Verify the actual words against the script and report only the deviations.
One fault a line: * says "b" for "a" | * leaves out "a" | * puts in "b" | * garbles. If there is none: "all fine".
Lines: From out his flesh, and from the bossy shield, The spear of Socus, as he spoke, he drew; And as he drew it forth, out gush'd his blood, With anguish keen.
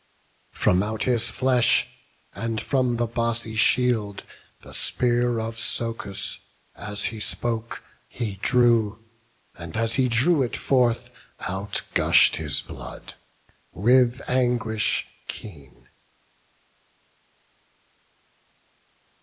all fine